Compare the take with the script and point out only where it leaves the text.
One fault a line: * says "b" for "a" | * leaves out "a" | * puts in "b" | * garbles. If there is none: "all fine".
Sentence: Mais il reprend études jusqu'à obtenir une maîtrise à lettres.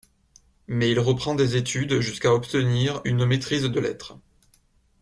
* puts in "des"
* says "de" for "à"